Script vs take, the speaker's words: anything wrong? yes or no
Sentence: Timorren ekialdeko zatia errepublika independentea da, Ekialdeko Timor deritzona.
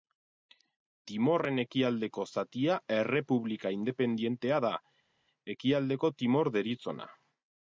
no